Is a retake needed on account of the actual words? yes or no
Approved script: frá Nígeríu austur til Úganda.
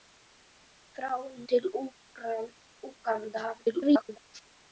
yes